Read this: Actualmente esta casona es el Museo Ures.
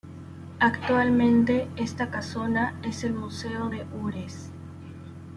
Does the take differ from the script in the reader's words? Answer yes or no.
yes